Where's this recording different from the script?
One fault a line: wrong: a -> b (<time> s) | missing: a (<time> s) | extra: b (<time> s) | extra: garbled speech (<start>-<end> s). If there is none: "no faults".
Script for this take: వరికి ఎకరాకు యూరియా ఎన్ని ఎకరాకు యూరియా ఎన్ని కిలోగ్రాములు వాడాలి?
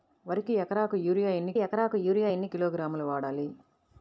no faults